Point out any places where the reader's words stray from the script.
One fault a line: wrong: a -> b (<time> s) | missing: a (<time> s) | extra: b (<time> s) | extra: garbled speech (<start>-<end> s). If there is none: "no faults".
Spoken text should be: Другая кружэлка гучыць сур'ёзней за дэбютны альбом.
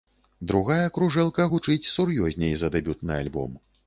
no faults